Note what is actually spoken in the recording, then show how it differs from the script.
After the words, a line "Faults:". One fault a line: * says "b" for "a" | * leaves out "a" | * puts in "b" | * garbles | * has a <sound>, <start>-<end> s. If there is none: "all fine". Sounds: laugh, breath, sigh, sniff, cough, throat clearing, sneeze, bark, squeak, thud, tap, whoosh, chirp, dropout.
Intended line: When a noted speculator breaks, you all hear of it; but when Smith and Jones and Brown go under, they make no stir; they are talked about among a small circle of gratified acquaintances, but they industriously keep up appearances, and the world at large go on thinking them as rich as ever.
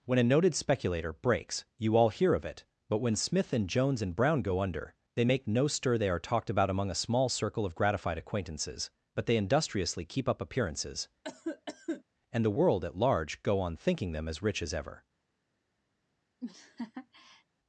When a noted speculator breaks, you all hear of it; but when Smith and Jones and Brown go under, they make no stir; they are talked about among a small circle of gratified acquaintances, but they industriously keep up appearances, and the world at large go on thinking them as rich as ever.
Faults:
* has a cough, 11.2-12.0 s
* has a laugh, 16.4-17.4 s